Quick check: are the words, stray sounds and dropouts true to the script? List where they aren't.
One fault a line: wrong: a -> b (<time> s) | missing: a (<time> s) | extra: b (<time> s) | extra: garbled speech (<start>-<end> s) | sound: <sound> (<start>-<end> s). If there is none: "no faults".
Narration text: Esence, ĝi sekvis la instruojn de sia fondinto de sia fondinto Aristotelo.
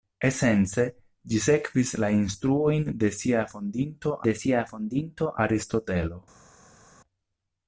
no faults